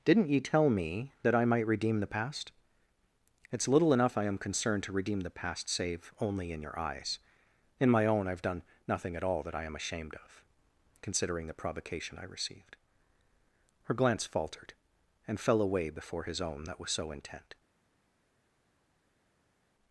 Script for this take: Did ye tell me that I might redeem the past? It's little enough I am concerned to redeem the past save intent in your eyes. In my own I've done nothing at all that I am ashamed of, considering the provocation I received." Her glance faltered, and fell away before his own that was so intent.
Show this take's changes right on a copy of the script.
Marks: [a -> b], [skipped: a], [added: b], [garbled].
[Did -> Didn't] ye tell me that I might redeem the past? It's little enough I am concerned to redeem the past save [intent -> only] in your eyes. In my own I've done nothing at all that I am ashamed of, considering the provocation I received." Her glance faltered, and fell away before his own that was so intent.